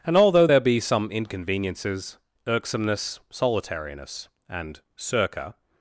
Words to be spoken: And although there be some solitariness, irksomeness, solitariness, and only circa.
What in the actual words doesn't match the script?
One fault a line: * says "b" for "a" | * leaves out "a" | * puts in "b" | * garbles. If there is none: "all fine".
* says "inconveniences" for "solitariness"
* leaves out "only"